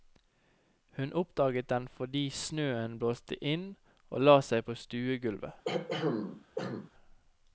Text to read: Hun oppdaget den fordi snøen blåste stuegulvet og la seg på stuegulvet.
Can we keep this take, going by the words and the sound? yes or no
no